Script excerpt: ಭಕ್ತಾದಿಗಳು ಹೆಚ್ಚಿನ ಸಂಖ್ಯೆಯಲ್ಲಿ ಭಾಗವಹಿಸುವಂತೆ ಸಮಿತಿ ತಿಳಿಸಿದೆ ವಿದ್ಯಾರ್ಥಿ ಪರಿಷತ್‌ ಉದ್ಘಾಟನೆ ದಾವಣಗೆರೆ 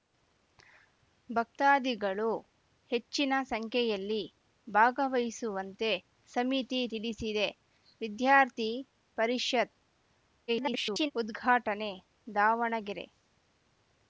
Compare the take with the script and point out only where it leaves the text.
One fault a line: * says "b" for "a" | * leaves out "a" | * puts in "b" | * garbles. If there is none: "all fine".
* garbles